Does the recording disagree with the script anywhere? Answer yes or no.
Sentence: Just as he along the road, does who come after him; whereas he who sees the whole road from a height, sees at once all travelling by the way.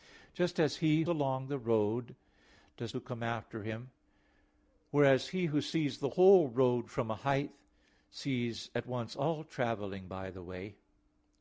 no